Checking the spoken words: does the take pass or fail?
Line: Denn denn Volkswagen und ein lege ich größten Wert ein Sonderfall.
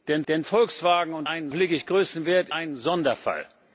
pass